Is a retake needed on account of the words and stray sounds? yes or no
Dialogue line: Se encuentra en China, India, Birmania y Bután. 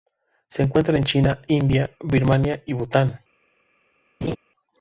yes